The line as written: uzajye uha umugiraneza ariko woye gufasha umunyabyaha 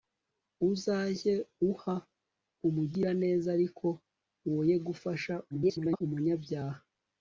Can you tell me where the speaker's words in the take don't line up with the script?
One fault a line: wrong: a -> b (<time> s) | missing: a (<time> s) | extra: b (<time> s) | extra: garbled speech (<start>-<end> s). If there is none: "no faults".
extra: garbled speech (5.5-6.0 s)